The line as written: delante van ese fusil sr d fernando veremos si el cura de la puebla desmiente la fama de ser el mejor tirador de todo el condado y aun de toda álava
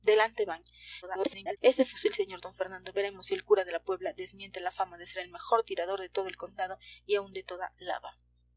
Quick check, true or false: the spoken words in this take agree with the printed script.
false